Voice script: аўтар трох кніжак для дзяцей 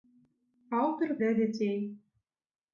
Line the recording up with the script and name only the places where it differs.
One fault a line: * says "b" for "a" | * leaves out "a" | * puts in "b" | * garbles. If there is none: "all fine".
* leaves out "трох кніжак"